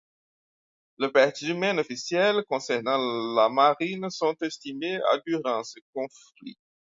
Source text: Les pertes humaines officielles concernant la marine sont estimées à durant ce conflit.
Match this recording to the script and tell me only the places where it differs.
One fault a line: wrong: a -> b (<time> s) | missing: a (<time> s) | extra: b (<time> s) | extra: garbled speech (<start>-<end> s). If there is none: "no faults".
no faults